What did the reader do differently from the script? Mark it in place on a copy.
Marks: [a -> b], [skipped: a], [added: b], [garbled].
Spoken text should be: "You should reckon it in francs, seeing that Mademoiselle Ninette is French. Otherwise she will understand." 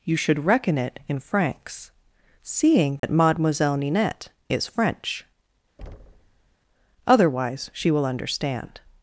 "You should reckon it in francs, seeing that Mademoiselle Ninette is French. Otherwise she will understand."